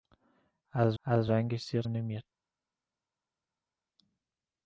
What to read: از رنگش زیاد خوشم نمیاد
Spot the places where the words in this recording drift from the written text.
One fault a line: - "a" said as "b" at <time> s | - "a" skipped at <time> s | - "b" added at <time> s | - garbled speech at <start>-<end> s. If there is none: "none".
- "از" added at 1.0 s
- "خوشم" skipped at 1.8 s